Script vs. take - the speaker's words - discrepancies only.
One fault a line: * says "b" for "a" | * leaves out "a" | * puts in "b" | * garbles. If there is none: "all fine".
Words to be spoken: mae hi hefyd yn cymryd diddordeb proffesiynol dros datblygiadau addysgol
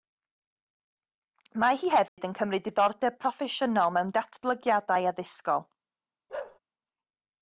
* says "mewn" for "dros"